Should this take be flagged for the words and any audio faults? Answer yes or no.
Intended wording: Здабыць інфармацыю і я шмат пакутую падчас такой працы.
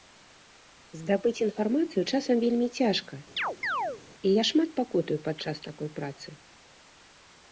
yes